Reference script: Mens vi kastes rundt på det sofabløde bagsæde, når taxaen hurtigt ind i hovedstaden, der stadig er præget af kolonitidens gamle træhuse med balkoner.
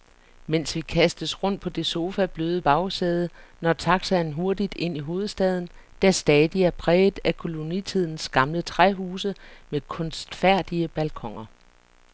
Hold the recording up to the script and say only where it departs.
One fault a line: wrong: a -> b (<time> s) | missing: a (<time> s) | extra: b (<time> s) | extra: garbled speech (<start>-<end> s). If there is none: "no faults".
extra: kunstfærdige (9.8 s)